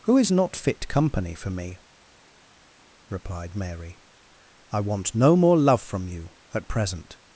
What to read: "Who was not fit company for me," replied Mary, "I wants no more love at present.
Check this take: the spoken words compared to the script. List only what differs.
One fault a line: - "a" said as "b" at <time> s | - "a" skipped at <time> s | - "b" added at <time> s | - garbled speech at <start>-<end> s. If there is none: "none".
- "was" said as "is" at 0.2 s
- "wants" said as "want" at 4.8 s
- "from you" added at 5.8 s